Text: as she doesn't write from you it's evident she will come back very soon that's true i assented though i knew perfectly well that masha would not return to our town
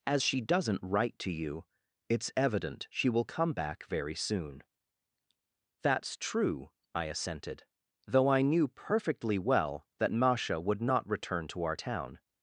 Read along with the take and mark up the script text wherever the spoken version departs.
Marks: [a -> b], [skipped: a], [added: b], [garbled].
as she doesn't write [from -> to] you it's evident she will come back very soon that's true i assented though i knew perfectly well that masha would not return to our town